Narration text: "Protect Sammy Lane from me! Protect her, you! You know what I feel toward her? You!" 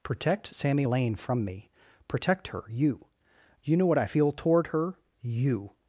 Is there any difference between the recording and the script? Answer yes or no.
no